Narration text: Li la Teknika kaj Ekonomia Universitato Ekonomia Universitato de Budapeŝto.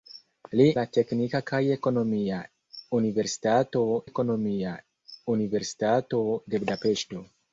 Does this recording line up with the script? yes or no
yes